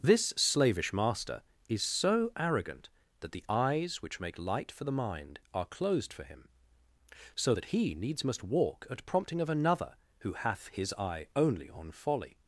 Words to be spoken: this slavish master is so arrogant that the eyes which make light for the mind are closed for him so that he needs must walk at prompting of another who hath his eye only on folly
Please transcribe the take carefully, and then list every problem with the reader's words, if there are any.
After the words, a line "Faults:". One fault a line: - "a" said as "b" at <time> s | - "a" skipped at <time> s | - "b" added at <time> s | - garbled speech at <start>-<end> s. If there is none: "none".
this slavish master is so arrogant that the eyes which make light for the mind are closed for him so that he needs must walk at prompting of another who hath his eye only on folly
Faults:
none